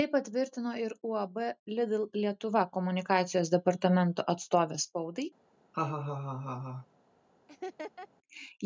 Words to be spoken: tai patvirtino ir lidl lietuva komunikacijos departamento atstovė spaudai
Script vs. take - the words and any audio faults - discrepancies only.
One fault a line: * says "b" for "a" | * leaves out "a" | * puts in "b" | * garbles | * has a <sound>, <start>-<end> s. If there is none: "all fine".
* puts in "uab"
* has a laugh, 5.7-6.9 s
* has a laugh, 7.5-8.1 s